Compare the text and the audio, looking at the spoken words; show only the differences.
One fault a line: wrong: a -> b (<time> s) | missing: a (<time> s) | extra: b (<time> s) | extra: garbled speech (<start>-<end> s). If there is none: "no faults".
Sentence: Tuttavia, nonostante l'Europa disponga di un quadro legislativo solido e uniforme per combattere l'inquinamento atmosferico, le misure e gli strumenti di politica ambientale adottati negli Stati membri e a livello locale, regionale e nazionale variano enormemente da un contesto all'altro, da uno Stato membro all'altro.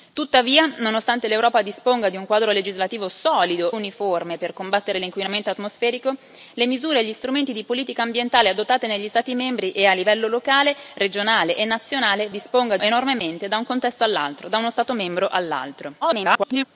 missing: e (3.7 s)
wrong: variano -> disponga (12.3 s)
extra: garbled speech (16.0-16.6 s)